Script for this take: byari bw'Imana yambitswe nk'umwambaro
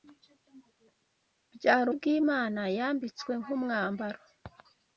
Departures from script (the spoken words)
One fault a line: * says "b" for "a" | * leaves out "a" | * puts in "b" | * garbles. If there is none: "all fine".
all fine